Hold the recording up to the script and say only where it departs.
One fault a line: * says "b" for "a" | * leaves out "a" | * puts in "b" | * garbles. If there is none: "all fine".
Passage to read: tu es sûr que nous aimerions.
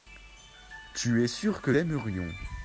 * leaves out "nous"